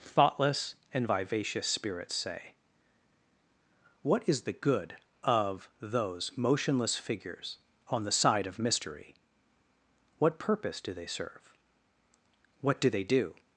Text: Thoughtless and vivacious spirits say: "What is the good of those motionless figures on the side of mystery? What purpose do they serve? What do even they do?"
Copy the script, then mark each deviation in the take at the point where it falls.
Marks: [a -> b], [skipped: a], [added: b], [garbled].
Thoughtless and vivacious spirits say: "What is the good of those motionless figures on the side of mystery? What purpose do they serve? What do [skipped: even] they do?"